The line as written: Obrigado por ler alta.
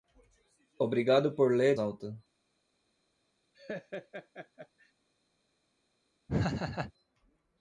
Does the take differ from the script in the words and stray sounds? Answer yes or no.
yes